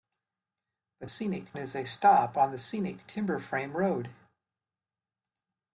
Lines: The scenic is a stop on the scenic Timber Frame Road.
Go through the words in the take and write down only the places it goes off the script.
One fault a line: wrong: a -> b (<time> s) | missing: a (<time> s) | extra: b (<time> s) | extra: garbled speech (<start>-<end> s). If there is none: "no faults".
no faults